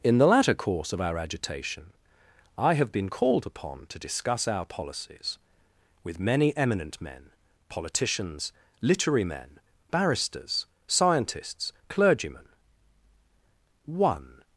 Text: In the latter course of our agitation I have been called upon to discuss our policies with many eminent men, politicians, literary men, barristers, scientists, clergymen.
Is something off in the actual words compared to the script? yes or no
yes